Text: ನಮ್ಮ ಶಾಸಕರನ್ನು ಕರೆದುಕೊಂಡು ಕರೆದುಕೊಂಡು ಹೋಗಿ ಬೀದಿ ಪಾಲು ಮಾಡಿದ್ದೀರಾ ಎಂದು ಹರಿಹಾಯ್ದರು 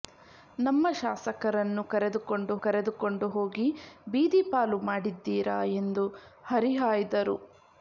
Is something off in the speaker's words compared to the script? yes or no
no